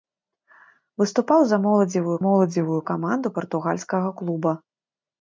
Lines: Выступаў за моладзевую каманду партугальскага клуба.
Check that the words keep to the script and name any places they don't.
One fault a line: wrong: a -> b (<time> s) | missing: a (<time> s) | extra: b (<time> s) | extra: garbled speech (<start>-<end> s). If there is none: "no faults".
extra: моладзевую (2.2 s)